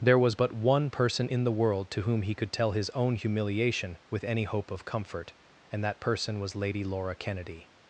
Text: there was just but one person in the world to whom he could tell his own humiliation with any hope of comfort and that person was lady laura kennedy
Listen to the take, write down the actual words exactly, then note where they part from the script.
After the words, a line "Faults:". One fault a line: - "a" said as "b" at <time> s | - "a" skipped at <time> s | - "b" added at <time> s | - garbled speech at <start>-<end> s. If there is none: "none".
there was but one person in the world to whom he could tell his own humiliation with any hope of comfort and that person was lady laura kennedy
Faults:
- "just" skipped at 0.3 s